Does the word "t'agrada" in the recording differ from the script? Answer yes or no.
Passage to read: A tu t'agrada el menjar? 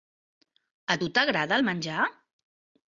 no